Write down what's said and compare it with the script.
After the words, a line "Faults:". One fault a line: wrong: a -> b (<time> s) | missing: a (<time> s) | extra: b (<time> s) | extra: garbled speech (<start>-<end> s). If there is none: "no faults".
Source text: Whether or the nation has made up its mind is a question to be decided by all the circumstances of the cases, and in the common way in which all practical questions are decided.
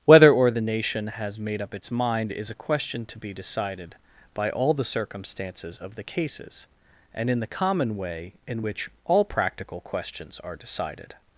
Whether or the nation has made up its mind is a question to be decided by all the circumstances of the cases, and in the common way in which all practical questions are decided.
Faults:
no faults